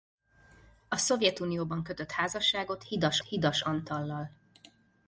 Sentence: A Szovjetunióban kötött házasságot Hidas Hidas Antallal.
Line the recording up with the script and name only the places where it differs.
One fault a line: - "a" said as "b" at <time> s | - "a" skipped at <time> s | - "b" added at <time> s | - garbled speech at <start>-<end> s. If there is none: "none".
none